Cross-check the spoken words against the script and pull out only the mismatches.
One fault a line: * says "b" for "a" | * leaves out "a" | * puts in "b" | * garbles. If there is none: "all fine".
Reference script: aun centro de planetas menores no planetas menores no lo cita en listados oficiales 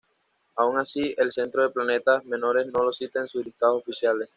* puts in "así el"
* leaves out "planetas menores no"
* puts in "sus"